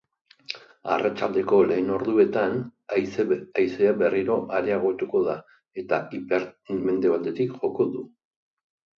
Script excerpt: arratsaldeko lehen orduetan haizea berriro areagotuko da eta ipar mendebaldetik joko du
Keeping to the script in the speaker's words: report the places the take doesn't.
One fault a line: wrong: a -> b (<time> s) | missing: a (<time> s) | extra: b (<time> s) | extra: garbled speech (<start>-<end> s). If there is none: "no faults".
no faults